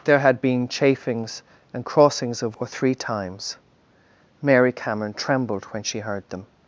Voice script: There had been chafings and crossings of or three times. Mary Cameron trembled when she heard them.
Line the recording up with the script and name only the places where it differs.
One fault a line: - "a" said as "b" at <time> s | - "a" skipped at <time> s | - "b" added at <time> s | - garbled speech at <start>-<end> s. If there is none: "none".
none